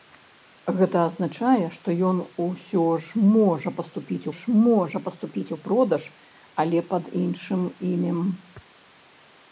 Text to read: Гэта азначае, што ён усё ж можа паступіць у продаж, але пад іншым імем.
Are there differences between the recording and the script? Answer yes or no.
yes